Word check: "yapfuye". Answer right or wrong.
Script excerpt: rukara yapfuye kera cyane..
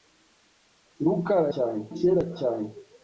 wrong